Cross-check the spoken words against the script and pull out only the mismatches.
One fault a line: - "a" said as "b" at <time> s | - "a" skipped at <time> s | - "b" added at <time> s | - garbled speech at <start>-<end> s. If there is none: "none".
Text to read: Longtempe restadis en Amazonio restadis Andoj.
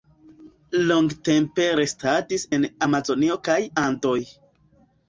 - "restadis" said as "kaj" at 3.5 s